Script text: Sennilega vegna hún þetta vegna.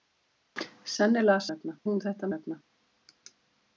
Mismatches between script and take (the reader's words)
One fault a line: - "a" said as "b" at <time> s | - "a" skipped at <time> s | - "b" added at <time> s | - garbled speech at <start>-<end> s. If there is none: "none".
none